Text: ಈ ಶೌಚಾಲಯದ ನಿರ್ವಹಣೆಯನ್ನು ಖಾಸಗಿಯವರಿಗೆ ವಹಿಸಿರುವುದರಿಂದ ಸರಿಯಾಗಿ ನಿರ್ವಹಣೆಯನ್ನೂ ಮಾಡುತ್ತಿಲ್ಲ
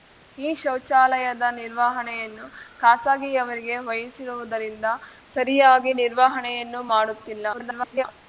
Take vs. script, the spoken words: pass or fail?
fail